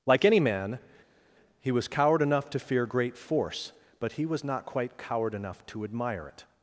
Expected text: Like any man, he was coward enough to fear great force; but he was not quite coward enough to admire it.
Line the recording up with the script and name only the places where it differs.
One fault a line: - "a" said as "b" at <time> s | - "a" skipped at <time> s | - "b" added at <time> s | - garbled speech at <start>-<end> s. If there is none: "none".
none